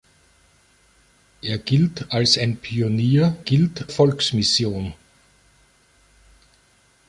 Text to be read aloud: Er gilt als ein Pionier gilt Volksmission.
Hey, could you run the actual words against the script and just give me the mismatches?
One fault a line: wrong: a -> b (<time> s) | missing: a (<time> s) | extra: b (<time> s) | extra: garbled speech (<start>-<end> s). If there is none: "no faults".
no faults